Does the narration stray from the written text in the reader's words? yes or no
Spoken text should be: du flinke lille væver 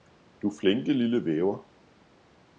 no